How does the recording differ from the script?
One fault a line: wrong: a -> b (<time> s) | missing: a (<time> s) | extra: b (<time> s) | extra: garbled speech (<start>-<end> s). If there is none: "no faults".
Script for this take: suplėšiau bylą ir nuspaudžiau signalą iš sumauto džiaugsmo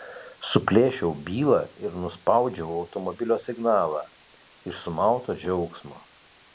extra: automobilio (2.8 s)